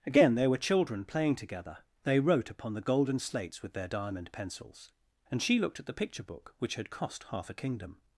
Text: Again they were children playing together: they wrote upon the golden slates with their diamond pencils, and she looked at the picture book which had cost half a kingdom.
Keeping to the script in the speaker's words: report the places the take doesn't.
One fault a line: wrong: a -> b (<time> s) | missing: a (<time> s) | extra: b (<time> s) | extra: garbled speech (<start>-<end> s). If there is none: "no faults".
no faults